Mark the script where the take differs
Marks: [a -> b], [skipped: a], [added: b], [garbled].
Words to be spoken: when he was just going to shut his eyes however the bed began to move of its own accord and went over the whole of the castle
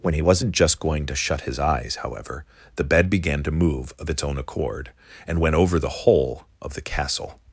when he [was -> wasn't] just going to shut his eyes however the bed began to move of its own accord and went over the whole of the castle